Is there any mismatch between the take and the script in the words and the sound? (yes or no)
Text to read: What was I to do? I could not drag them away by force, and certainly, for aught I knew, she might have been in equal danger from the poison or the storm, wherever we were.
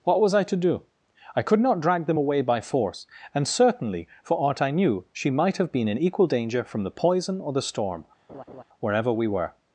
yes